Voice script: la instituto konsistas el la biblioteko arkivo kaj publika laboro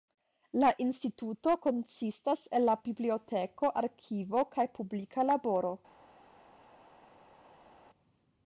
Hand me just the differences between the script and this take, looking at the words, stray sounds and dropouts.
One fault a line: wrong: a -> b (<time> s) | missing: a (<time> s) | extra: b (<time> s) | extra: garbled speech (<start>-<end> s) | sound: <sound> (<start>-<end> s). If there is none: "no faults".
no faults